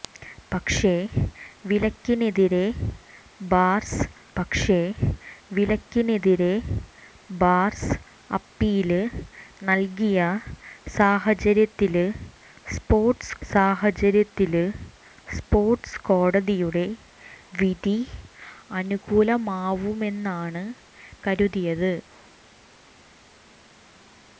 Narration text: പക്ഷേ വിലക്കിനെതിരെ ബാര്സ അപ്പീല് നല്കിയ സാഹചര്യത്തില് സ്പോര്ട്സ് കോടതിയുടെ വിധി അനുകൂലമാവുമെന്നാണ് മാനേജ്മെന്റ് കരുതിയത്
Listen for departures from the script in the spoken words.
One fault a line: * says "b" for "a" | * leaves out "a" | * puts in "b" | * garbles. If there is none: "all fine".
* puts in "പക്ഷേ വിലക്കിനെതിരെ ബാര്സ"
* puts in "സാഹചര്യത്തില് സ്പോര്ട്സ്"
* leaves out "മാനേജ്മെന്റ്"